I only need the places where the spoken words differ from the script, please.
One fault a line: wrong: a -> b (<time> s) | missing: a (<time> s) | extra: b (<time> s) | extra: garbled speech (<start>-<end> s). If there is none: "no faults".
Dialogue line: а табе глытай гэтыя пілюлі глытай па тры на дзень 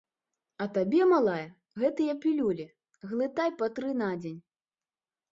wrong: глытай -> малая (1.1 s)